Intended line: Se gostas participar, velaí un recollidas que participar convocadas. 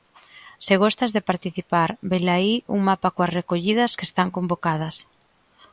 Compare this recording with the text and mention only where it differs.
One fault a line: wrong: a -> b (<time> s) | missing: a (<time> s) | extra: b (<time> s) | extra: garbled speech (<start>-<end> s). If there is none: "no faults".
extra: de (1.1 s)
extra: mapa coas (2.9 s)
wrong: participar -> están (4.1 s)